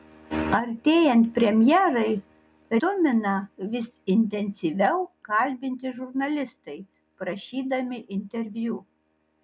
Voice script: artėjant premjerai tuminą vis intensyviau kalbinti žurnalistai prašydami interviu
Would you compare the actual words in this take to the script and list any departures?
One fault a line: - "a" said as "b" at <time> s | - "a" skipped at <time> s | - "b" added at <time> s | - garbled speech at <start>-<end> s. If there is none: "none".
none